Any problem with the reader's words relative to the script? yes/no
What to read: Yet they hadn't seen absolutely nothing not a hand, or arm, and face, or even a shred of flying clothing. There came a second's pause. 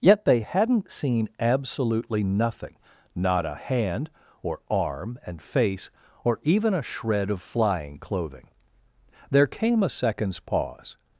no